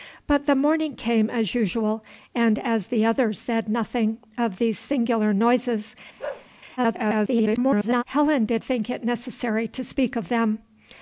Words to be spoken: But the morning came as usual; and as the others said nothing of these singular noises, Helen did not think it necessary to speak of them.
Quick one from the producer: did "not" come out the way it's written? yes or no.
no